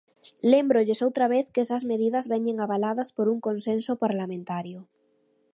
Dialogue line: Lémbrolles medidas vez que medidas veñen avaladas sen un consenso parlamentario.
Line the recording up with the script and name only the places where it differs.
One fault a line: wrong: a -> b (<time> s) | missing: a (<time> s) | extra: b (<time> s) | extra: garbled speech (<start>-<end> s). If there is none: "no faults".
wrong: medidas -> outra (1.1 s)
extra: esas (1.6 s)
wrong: sen -> por (3.2 s)